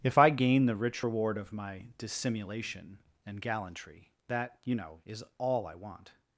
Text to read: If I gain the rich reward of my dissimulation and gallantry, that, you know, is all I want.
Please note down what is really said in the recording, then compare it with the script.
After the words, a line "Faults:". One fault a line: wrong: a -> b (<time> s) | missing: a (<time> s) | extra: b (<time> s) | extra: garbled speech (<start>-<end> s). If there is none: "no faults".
If I gain the rich reward of my dissimulation and gallantry, that, you know, is all I want.
Faults:
no faults